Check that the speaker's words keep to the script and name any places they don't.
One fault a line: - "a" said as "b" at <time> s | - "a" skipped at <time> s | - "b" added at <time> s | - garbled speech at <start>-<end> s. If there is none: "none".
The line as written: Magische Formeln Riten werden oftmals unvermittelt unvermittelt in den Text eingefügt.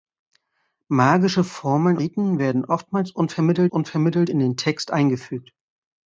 none